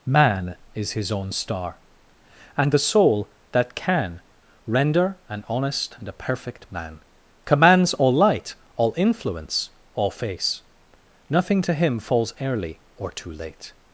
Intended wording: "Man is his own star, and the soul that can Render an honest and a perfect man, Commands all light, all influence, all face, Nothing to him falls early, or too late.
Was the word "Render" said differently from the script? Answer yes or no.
no